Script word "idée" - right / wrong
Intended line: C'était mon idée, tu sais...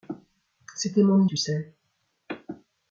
wrong